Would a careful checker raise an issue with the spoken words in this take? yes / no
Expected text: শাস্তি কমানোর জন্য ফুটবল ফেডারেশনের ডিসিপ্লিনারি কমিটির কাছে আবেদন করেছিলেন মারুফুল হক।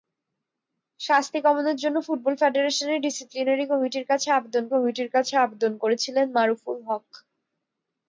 yes